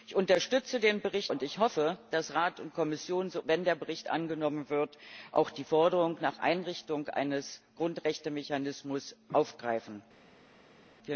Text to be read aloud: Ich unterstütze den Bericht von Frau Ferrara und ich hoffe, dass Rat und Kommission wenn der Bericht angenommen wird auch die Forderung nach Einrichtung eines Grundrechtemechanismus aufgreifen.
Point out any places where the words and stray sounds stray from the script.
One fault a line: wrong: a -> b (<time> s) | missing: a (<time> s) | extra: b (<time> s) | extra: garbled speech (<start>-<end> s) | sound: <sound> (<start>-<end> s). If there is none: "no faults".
missing: von Frau Ferrara (1.3 s)